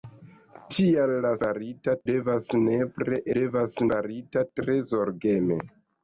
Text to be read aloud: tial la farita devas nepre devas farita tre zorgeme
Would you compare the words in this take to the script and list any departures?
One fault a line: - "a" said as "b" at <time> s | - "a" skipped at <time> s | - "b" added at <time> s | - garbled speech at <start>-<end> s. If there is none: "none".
none